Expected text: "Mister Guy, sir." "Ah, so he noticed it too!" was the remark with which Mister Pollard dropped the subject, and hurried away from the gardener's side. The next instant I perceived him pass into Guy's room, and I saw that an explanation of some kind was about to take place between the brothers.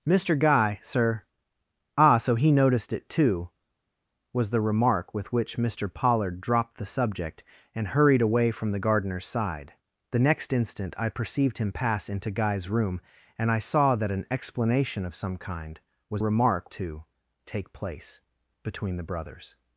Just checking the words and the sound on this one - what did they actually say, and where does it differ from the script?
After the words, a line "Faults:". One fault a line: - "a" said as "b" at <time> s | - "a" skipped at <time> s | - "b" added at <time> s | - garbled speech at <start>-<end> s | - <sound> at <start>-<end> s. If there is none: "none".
"Mister Guy, sir." "Ah, so he noticed it too!" was the remark with which Mister Pollard dropped the subject, and hurried away from the gardener's side. The next instant I perceived him pass into Guy's room, and I saw that an explanation of some kind was remark to take place between the brothers.
Faults:
- "about" said as "remark" at 16.2 s